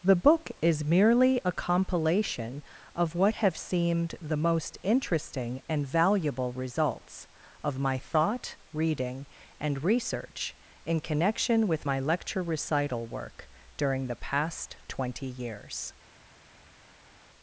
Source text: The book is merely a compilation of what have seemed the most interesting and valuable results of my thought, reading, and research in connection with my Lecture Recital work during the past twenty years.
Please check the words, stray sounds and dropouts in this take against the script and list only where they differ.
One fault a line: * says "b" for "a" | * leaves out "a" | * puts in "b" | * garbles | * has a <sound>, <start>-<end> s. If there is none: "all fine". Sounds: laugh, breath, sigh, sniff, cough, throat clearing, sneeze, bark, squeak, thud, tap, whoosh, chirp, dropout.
all fine